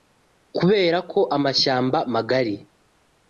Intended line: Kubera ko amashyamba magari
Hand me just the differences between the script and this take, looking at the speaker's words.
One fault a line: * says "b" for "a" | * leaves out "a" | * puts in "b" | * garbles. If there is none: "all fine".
all fine